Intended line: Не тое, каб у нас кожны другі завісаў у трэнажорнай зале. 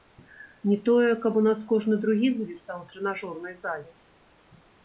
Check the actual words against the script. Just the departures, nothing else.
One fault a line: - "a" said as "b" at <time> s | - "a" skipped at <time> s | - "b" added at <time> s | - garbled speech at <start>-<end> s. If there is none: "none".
none